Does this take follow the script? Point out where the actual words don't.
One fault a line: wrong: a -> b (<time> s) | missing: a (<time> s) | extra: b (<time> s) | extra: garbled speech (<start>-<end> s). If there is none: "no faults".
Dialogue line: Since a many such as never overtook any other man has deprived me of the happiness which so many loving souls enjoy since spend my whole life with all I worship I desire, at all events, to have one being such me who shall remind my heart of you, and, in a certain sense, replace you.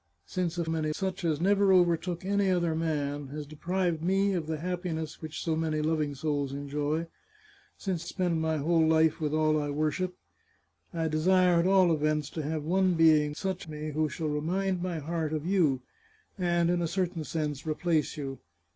no faults